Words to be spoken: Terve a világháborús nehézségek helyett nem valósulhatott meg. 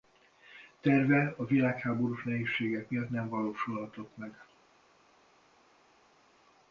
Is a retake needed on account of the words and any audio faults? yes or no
yes